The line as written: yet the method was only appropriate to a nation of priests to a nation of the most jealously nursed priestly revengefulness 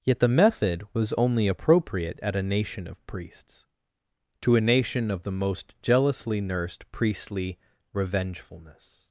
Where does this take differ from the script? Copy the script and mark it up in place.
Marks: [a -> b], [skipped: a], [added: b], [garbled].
yet the method was only appropriate [to -> at] a nation of priests to a nation of the most jealously nursed priestly revengefulness